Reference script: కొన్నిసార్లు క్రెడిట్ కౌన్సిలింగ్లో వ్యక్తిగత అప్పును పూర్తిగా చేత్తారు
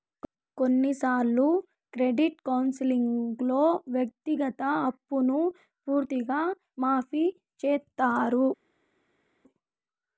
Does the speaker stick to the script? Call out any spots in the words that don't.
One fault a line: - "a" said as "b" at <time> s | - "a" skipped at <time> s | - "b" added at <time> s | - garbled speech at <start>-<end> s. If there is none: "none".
- "మాఫీ" added at 6.8 s